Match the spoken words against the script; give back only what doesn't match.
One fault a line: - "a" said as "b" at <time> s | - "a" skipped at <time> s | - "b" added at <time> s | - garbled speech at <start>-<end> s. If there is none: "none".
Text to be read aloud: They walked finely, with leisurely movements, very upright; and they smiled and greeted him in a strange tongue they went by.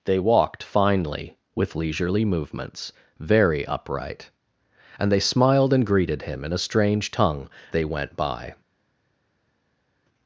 none